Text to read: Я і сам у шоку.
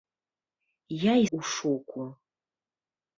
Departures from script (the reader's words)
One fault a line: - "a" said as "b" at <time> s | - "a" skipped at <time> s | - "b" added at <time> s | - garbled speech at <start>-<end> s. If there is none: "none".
- "сам" skipped at 1.3 s